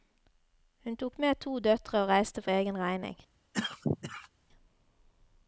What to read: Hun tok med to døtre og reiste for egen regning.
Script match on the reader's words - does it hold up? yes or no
yes